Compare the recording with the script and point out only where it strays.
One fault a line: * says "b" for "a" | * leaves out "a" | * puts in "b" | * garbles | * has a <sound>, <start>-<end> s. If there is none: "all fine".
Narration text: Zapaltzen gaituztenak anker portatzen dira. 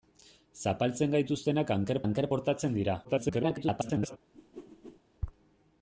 * puts in "anker"
* garbles
* has a whoosh, 4.3-5.0 s